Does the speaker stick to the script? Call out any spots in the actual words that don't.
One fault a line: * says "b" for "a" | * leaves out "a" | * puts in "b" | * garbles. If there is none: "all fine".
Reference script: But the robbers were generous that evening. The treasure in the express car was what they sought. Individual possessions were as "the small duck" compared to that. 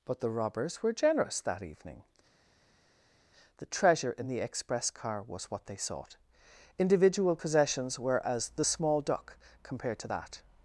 all fine